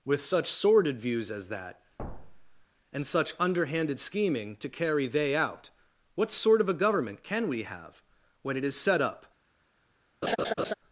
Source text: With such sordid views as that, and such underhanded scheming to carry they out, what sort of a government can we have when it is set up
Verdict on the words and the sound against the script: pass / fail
fail